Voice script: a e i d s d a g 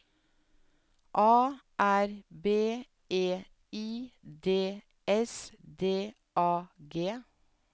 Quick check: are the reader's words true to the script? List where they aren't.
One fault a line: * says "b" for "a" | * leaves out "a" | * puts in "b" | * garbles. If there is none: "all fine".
* puts in "r b"